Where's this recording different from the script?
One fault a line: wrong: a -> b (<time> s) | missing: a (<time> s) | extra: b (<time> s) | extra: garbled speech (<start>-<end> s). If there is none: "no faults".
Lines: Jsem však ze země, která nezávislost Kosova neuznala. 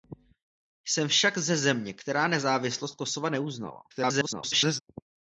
extra: garbled speech (3.9-4.8 s)